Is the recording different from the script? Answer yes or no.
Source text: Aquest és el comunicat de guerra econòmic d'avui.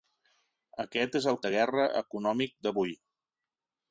yes